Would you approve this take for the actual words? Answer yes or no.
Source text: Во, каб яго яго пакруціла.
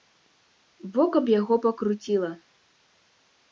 no